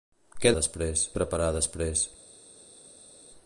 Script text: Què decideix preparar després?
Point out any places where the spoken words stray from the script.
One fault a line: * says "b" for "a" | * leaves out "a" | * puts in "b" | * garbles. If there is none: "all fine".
* says "després" for "decideix"